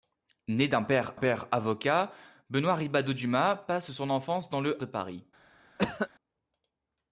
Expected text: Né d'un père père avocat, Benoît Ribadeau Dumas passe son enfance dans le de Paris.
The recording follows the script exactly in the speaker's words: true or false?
true